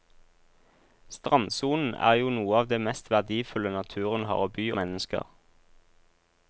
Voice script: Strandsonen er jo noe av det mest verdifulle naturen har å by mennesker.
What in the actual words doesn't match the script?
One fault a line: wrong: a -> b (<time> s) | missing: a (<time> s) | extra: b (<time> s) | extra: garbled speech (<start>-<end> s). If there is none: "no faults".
no faults